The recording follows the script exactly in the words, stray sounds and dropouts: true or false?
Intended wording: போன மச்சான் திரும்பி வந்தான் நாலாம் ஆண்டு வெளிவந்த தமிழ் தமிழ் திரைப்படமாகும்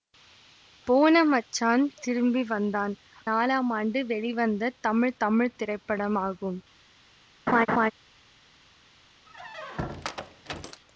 false